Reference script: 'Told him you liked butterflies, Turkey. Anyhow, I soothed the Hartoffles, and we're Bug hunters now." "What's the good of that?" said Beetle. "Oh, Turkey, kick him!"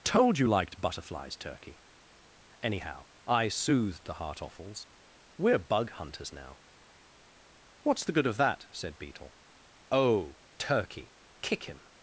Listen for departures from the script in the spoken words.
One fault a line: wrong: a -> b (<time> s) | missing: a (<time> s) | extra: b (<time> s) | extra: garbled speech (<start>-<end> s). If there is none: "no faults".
missing: him (0.4 s)
missing: and (4.9 s)